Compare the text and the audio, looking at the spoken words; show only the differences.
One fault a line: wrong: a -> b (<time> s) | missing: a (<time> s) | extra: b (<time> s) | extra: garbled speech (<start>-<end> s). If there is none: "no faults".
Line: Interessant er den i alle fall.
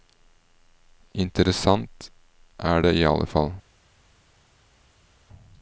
wrong: den -> det (2.8 s)